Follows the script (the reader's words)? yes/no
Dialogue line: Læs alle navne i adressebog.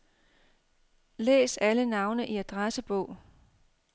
yes